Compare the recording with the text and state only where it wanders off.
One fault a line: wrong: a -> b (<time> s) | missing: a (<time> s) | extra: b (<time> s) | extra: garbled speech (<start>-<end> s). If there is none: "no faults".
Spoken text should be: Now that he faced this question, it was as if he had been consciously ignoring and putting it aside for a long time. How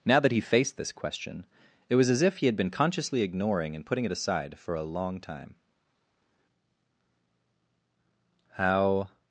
no faults